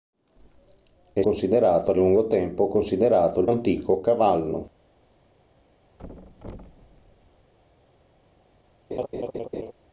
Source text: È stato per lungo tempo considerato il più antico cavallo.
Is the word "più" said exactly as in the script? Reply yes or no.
no